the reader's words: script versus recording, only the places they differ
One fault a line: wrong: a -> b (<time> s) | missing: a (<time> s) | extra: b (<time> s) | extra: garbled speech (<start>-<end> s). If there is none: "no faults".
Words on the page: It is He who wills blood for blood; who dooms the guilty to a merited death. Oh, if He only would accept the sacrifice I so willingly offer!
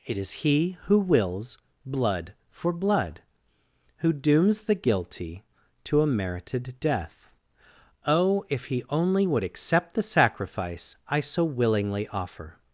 no faults